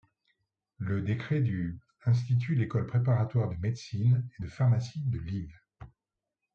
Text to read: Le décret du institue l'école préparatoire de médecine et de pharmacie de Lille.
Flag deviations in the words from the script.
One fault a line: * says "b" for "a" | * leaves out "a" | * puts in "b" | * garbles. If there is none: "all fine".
all fine